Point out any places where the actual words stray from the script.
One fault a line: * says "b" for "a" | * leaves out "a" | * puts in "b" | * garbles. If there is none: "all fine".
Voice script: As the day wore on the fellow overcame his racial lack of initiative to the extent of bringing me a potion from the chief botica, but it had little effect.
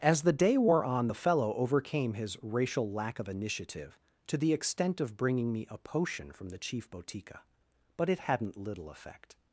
* says "hadn't" for "had"